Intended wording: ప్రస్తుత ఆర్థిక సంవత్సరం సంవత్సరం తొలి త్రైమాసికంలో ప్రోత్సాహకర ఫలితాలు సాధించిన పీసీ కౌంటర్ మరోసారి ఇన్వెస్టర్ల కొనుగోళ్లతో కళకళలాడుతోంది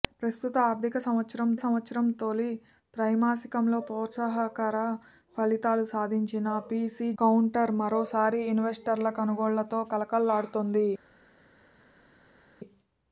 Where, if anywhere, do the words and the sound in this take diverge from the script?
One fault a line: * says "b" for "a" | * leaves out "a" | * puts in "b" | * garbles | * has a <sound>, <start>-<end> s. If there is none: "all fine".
all fine